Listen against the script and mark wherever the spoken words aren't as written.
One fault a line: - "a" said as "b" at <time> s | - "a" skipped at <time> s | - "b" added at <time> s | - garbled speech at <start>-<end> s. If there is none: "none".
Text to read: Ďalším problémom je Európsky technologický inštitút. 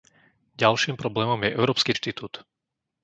- "technologický" skipped at 1.9 s